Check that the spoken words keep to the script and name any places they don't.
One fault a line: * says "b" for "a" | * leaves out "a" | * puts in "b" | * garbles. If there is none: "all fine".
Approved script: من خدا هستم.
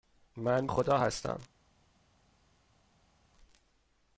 all fine